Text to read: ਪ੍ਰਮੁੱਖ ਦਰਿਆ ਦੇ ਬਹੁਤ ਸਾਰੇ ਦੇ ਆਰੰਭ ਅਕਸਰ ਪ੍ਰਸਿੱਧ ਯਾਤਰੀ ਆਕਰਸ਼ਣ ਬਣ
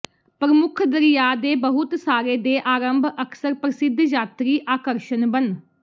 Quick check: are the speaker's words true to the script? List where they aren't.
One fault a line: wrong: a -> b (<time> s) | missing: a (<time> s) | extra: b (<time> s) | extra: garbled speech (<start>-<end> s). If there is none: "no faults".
no faults